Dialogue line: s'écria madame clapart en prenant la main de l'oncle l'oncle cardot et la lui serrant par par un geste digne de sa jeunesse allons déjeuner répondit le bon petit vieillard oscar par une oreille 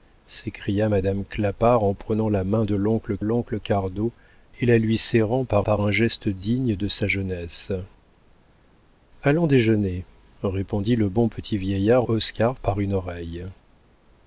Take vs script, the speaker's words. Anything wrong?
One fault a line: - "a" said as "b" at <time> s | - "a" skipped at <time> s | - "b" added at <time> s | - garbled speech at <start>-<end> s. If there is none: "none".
none